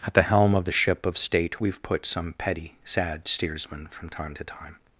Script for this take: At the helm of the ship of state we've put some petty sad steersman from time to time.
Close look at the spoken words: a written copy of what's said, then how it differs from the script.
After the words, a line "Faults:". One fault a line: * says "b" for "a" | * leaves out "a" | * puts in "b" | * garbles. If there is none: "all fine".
At the helm of the ship of state we've put some petty sad steersman from time to time.
Faults:
all fine